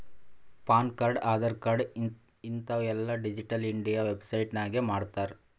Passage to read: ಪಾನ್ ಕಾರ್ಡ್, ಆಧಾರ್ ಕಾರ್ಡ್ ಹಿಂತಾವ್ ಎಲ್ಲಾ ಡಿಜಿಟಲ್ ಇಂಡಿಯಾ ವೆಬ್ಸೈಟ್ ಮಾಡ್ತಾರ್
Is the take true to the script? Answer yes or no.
no